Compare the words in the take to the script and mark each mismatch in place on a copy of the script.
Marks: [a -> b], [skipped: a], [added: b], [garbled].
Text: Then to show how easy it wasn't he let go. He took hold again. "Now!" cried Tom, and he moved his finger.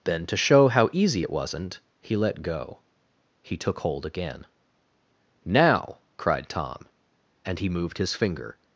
Then to show how easy it wasn't he let go. He took hold again. "Now!" cried Tom, and he moved his finger.